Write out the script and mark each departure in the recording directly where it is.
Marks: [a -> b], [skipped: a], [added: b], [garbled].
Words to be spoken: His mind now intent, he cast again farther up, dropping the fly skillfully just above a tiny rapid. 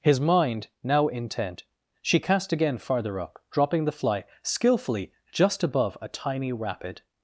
His mind now intent, [he -> she] cast again farther up, dropping the fly skillfully just above a tiny rapid.